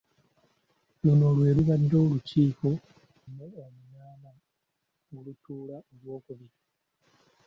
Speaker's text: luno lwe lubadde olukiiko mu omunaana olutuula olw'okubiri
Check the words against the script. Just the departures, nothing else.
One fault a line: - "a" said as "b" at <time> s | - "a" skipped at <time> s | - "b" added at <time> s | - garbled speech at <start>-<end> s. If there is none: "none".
none